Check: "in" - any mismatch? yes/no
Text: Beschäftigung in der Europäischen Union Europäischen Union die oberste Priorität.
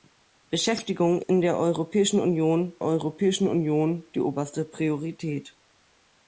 no